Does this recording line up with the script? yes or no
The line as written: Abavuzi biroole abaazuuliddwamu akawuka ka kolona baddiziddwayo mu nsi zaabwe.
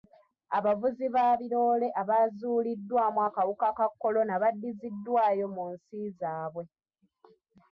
no